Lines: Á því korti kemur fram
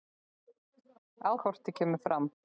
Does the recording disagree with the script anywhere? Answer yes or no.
yes